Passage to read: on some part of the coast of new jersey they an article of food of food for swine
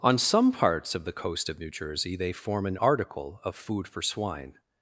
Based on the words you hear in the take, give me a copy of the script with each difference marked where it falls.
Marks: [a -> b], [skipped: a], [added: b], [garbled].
on some [part -> parts] of the coast of new jersey they [added: form] an article of food [skipped: of food] for swine